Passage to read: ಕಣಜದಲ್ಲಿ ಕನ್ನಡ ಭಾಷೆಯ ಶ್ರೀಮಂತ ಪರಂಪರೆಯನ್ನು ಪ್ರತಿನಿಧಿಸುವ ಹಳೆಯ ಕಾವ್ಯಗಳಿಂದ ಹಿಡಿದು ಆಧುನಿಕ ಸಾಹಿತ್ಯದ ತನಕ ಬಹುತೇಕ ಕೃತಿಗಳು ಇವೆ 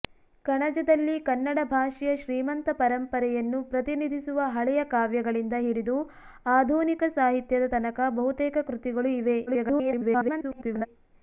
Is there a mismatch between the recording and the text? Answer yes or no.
yes